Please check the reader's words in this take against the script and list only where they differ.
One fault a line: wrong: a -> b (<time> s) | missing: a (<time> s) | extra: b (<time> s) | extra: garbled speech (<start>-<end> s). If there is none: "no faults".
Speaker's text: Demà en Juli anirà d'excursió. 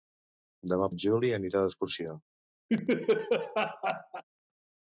no faults